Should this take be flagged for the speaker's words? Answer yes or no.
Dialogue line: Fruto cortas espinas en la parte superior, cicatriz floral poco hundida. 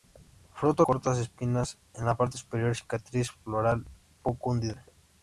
no